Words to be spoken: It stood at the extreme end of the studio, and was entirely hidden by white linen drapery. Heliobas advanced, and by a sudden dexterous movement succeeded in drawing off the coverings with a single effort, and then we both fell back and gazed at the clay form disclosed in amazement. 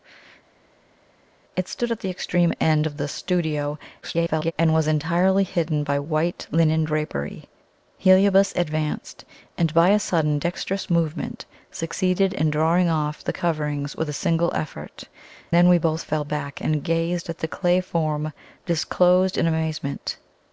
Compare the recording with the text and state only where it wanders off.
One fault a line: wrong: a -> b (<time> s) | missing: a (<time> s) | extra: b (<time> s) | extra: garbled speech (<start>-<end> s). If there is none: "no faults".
extra: garbled speech (4.0-4.5 s)
missing: and (15.0 s)